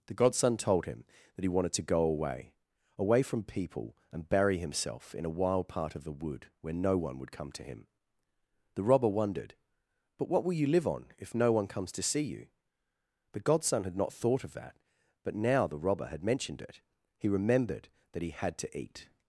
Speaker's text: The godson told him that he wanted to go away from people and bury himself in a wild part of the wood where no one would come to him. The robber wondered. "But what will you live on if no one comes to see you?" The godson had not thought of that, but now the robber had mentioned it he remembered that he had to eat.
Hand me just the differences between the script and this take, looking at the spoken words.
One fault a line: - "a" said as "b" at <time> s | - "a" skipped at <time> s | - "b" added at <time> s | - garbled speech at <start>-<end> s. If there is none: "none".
- "away" added at 3.0 s